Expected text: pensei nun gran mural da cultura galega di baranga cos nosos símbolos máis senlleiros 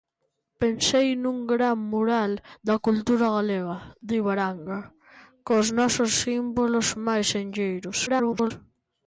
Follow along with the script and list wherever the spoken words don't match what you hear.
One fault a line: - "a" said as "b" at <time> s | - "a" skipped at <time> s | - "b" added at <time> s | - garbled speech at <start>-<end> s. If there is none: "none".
- garbled speech at 8.1-8.5 s